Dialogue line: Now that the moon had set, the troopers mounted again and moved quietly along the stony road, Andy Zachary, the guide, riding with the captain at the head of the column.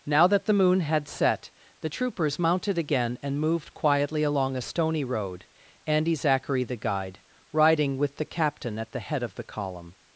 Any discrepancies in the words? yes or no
yes